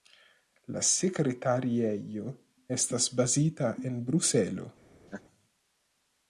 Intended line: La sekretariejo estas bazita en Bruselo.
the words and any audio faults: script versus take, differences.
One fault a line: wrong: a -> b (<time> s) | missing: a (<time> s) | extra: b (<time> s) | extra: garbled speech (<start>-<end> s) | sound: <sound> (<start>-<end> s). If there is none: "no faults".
sound: laugh (5.1-5.2 s)